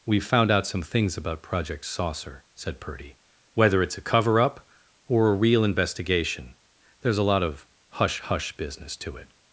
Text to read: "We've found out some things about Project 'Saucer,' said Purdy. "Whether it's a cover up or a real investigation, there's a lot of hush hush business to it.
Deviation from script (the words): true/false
false